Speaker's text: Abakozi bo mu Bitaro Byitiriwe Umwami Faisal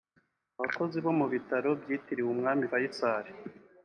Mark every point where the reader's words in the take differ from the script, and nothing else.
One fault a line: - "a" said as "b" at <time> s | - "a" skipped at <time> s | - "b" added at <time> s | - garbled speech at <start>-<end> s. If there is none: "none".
none